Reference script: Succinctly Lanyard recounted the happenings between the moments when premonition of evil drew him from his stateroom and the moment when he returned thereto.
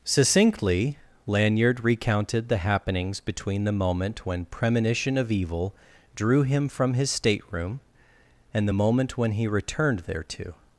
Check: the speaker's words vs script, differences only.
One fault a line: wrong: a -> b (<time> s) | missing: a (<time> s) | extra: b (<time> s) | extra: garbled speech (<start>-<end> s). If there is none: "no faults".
wrong: moments -> moment (3.7 s)